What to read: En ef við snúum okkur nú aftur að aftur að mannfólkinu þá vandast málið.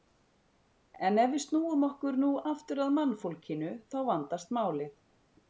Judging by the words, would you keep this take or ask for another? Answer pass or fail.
fail